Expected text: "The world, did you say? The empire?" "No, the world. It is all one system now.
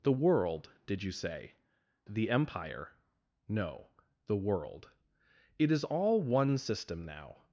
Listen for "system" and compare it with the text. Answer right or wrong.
right